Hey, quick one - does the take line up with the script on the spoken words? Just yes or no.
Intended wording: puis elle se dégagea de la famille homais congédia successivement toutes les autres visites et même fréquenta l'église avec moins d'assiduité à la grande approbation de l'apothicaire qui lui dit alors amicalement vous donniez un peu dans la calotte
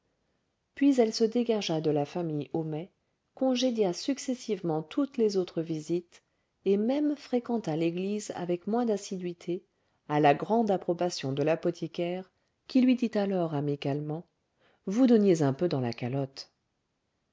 yes